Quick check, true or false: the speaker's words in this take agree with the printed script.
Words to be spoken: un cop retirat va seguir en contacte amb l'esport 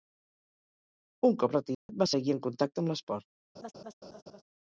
true